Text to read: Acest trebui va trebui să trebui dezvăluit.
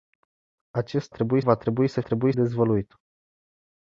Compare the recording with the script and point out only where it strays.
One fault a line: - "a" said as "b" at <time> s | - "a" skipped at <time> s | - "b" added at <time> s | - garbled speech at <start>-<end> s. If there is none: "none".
none